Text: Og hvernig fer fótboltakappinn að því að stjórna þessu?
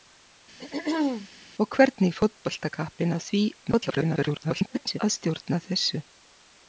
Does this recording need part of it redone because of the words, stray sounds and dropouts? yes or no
yes